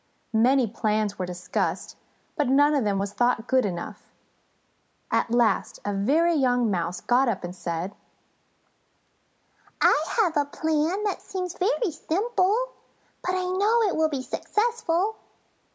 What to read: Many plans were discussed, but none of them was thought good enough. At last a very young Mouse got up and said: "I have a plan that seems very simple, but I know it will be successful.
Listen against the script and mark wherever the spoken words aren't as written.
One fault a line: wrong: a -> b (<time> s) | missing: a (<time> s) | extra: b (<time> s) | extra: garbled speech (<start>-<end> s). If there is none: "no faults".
no faults